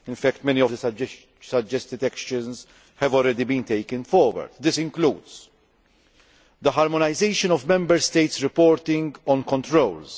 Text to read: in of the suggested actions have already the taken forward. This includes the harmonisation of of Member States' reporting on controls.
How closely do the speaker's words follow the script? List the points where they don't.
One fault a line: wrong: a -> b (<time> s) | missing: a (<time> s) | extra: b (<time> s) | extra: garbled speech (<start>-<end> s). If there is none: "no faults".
extra: fact many (0.1 s)
wrong: the -> been (3.4 s)
missing: of (7.7 s)